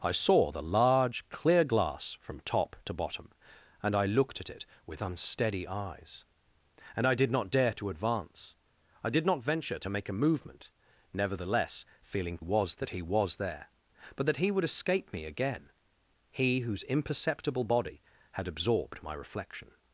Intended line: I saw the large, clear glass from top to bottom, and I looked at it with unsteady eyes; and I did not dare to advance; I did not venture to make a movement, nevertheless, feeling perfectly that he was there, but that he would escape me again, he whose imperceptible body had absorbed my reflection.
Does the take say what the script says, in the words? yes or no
no